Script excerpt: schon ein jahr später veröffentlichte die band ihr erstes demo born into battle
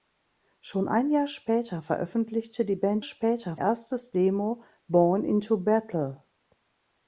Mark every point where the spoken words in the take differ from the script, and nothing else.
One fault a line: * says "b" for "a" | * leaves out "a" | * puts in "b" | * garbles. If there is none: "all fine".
* says "später" for "ihr"